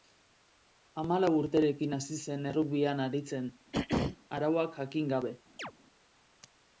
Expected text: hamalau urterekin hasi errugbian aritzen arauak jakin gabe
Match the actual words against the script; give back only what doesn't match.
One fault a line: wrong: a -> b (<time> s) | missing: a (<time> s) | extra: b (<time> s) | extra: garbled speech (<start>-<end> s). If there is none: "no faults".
extra: zen (2.2 s)